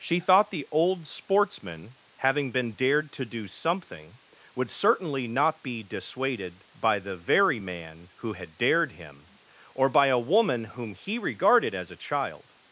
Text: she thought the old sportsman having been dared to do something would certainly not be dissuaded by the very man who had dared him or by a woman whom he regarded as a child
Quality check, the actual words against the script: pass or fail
pass